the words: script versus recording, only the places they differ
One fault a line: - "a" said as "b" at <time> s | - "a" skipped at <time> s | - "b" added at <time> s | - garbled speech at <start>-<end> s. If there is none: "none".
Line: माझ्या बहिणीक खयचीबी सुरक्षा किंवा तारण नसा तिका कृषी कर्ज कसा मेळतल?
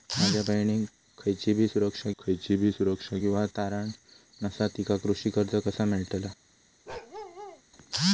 - "खयचीबी सुरक्षा" added at 2.2 s